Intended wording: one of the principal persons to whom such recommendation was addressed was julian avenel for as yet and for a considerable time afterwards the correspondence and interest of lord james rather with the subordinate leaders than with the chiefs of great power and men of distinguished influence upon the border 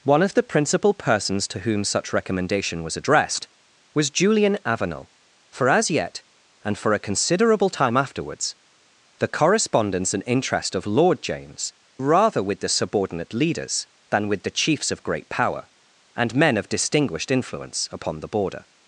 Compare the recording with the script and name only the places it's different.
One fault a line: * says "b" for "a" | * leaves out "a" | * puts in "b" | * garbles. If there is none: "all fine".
all fine